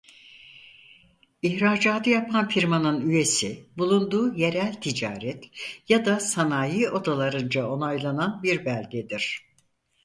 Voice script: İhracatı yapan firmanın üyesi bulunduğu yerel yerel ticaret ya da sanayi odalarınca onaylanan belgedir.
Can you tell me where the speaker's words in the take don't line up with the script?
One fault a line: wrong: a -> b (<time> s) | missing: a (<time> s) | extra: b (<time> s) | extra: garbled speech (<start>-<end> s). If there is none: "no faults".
missing: yerel (4.8 s)
extra: bir (8.4 s)